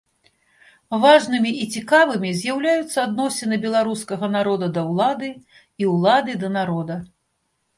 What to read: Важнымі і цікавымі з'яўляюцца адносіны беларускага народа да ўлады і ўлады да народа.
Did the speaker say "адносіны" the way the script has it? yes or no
yes